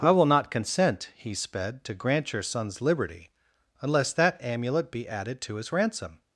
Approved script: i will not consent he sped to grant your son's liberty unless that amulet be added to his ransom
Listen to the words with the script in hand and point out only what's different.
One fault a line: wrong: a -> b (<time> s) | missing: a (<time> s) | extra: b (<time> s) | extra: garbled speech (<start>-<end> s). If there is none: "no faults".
no faults